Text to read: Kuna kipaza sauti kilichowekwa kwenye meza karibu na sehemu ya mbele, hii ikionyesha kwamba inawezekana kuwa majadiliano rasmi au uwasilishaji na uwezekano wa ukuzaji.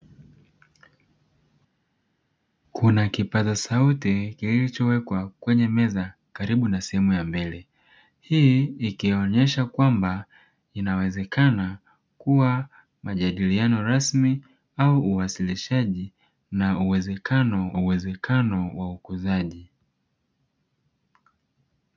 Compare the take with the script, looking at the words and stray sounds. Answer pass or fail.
fail